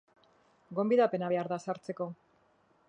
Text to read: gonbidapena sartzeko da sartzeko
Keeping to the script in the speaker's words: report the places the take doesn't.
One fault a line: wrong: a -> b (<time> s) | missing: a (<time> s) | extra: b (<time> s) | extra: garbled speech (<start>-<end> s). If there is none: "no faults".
wrong: sartzeko -> behar (1.3 s)